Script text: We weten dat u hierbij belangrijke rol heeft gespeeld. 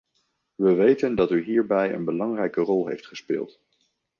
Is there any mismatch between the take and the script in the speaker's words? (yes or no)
yes